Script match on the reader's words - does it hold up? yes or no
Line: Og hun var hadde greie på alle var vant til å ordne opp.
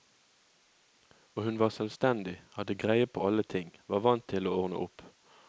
no